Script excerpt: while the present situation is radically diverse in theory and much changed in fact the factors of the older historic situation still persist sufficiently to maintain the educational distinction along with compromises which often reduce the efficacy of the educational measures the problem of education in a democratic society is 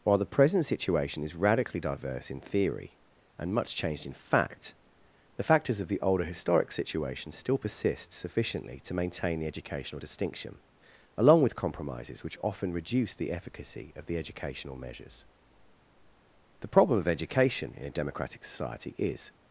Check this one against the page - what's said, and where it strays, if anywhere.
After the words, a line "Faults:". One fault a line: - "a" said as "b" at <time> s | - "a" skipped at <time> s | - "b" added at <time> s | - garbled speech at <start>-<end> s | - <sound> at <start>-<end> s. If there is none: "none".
while the present situation is radically diverse in theory and much changed in fact the factors of the older historic situation still persist sufficiently to maintain the educational distinction along with compromises which often reduce the efficacy of the educational measures the problem of education in a democratic society is
Faults:
none